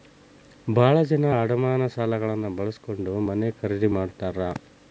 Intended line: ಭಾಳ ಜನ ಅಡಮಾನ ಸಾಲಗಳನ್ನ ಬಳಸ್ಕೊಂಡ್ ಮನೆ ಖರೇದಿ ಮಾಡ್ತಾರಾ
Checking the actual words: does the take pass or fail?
pass